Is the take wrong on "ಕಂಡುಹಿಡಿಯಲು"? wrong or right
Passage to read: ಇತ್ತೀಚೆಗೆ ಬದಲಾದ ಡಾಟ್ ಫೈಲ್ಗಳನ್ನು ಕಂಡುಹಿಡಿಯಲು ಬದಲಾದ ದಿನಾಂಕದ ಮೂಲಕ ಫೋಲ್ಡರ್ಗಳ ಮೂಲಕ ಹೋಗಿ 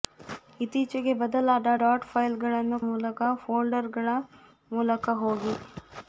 wrong